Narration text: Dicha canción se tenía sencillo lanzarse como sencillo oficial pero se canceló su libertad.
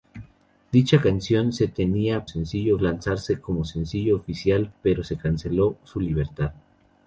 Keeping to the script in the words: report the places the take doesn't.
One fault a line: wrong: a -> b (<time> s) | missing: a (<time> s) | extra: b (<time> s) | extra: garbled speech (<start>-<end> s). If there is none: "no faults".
no faults